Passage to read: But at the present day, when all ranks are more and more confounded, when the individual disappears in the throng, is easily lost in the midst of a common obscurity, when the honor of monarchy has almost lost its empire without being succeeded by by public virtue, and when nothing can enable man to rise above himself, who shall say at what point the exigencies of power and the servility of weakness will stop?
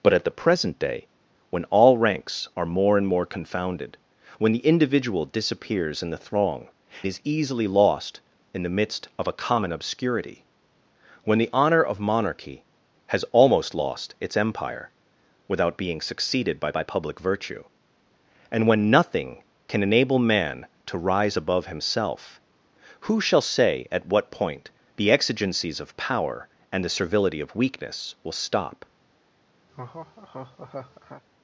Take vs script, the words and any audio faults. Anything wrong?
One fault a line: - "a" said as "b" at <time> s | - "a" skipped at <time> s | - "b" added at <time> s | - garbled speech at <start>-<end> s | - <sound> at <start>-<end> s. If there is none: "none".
- laugh at 29.7-31.2 s